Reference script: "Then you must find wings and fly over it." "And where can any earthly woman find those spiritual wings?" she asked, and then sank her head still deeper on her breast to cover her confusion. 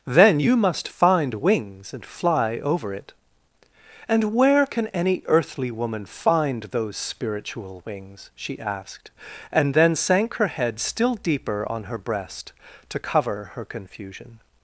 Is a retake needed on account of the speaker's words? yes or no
no